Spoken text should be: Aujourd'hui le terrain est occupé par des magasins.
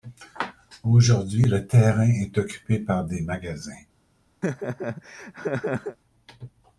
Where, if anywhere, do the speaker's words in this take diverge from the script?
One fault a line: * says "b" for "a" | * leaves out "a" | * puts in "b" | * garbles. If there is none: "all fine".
all fine